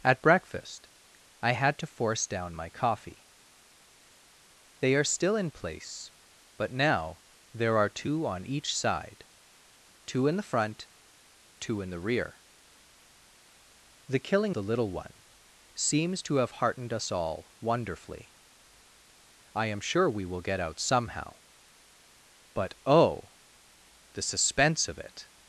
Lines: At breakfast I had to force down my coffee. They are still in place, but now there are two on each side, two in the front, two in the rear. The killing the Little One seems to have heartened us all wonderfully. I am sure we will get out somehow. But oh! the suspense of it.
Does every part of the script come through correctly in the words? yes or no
yes